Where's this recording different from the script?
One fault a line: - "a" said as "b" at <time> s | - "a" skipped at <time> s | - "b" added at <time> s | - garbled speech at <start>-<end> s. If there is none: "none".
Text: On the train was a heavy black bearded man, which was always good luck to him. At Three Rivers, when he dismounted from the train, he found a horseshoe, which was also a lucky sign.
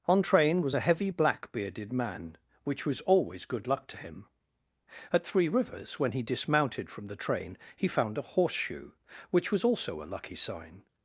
- "the" skipped at 0.2 s